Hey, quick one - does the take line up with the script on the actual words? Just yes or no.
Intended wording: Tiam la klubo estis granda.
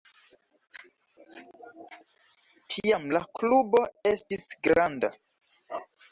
yes